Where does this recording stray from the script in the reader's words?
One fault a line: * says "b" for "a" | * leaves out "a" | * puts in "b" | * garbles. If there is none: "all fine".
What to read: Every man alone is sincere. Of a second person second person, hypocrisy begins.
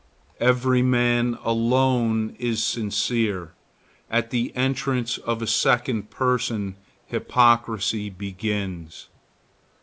* puts in "At the entrance"
* leaves out "second person"